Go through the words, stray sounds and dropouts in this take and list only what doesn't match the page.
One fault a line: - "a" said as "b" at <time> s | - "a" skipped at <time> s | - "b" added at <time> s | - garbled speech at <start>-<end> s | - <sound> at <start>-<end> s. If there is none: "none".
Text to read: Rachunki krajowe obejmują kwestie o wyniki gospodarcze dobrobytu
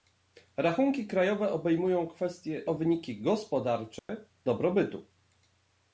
- dropout at 4.0-4.1 s